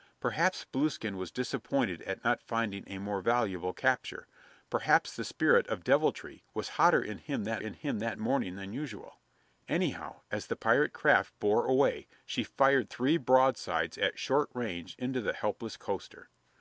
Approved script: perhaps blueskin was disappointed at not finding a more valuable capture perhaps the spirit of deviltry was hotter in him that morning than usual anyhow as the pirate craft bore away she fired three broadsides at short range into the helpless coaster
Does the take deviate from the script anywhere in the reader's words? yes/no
yes